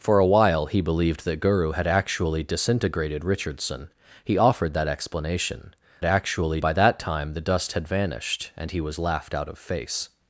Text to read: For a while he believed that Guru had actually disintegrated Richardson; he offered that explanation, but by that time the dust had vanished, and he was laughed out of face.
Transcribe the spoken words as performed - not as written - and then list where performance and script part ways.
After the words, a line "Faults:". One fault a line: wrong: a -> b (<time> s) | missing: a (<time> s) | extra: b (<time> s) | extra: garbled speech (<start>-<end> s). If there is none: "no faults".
For a while he believed that Guru had actually disintegrated Richardson; he offered that explanation, actually by that time the dust had vanished, and he was laughed out of face.
Faults:
wrong: but -> actually (6.0 s)